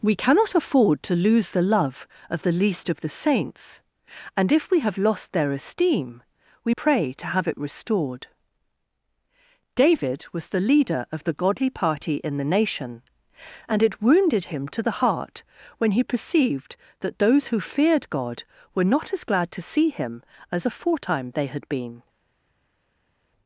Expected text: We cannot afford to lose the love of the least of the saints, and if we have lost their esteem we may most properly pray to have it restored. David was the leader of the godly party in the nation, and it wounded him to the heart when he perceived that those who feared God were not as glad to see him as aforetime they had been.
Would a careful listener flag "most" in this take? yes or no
yes